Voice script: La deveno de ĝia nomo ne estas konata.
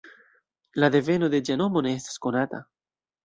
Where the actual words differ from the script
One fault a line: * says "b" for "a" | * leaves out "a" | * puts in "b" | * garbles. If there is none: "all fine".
all fine